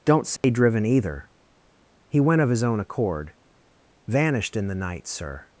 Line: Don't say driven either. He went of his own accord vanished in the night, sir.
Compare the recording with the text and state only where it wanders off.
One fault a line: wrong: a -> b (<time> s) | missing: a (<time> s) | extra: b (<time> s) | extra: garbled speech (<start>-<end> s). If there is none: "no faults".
no faults